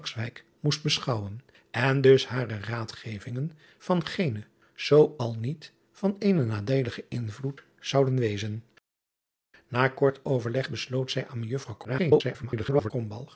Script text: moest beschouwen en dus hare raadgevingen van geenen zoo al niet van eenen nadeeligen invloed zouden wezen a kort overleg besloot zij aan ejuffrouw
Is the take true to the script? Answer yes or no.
no